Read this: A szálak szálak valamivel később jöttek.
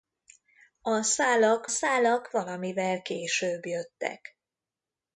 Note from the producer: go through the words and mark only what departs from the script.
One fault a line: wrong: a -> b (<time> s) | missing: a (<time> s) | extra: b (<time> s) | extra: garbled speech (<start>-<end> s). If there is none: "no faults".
no faults